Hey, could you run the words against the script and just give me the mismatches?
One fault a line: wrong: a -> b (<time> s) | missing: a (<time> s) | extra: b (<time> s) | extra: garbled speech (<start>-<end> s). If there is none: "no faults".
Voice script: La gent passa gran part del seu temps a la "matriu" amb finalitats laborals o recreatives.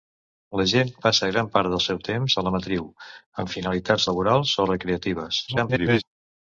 extra: garbled speech (5.5-6.0 s)